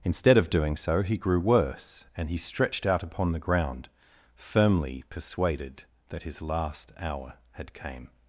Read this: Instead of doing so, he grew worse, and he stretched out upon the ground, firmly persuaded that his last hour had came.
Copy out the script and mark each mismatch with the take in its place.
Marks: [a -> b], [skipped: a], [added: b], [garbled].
Instead of doing so, he grew worse, and he stretched out upon the ground, firmly persuaded that his last hour had came.